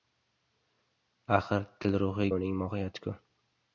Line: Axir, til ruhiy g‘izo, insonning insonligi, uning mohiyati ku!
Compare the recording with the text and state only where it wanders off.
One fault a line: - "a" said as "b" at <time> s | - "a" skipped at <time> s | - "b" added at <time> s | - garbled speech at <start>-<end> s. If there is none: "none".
- "g‘izo insonning insonligi" skipped at 2.3 s